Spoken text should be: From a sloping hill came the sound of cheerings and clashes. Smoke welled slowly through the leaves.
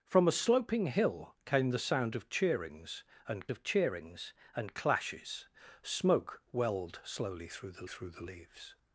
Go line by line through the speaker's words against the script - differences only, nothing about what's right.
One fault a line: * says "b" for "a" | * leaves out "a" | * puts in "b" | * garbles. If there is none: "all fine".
* puts in "of cheerings and"
* puts in "through the"